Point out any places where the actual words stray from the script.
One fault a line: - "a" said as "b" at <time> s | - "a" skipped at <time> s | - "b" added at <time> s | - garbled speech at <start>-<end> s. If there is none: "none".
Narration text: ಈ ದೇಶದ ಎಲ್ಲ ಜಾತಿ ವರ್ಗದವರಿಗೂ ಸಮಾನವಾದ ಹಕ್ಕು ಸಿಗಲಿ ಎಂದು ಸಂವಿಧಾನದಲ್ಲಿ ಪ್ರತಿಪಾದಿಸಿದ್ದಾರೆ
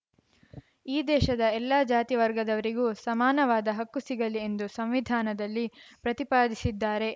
none